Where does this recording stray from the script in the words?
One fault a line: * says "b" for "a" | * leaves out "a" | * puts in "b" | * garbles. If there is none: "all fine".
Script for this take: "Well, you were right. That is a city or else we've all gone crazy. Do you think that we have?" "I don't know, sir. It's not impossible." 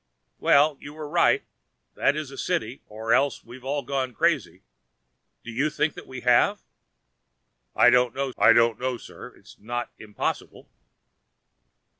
* puts in "I don't know"